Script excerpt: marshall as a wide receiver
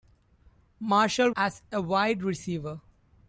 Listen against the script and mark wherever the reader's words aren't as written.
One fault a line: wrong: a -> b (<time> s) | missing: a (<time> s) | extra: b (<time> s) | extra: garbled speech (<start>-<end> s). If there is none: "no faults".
no faults